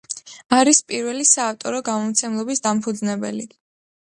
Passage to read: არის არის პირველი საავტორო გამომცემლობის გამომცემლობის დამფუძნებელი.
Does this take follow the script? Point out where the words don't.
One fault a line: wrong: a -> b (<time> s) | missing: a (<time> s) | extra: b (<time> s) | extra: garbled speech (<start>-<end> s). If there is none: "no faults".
missing: არის (0.8 s)
missing: გამომცემლობის (2.6 s)